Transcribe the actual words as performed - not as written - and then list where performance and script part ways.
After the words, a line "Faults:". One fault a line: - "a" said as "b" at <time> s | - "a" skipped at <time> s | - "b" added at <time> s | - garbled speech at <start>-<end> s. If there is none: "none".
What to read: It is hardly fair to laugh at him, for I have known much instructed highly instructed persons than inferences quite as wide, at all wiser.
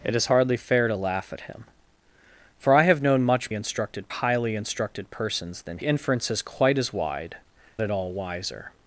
It is hardly fair to laugh at him, for I have known much instructed highly instructed persons than inferences quite as wide, at all wiser.
Faults:
none